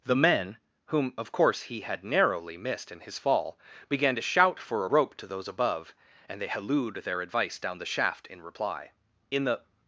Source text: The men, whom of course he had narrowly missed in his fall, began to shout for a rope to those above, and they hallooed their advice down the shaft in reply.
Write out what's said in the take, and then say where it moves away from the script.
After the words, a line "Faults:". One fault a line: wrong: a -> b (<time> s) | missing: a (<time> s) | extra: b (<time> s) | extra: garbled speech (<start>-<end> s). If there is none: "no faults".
The men, whom of course he had narrowly missed in his fall, began to shout for a rope to those above, and they hallooed their advice down the shaft in reply. In the
Faults:
extra: In the (9.3 s)